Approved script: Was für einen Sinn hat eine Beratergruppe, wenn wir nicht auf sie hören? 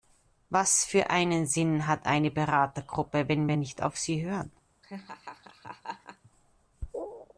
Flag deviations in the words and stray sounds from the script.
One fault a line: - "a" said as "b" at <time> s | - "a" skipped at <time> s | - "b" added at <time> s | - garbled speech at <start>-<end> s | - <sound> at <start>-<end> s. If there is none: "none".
- laugh at 4.8-6.3 s